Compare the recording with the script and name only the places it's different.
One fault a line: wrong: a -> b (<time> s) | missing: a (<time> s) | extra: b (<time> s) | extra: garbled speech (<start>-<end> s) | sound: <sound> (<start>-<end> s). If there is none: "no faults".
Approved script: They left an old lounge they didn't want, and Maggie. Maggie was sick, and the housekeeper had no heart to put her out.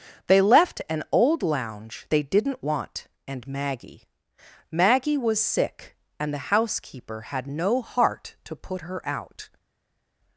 no faults